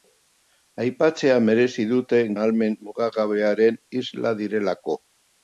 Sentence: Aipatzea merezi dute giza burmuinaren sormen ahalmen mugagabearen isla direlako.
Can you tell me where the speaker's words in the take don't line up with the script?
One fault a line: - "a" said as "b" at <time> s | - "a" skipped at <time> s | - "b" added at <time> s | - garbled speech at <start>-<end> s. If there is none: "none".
- "giza burmuinaren sormen" skipped at 2.2 s